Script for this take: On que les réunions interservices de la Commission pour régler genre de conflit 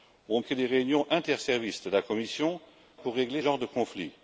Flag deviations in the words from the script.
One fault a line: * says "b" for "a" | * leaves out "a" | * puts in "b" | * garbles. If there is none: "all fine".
all fine